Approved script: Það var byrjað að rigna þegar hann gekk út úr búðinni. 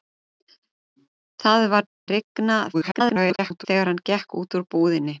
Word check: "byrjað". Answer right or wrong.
wrong